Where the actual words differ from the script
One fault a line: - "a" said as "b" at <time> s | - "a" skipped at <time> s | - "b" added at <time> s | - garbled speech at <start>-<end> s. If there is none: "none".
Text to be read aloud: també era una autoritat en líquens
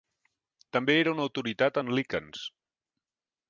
none